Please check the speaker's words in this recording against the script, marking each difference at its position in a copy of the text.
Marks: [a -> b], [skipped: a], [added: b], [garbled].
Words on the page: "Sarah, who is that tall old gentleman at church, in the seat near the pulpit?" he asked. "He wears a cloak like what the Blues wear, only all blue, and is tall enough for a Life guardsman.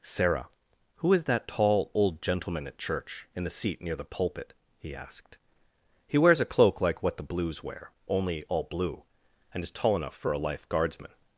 "Sarah, who is that tall old gentleman at church, in the seat near the pulpit?" he asked. "He wears a cloak like what the Blues wear, only all blue, and is tall enough for a Life guardsman.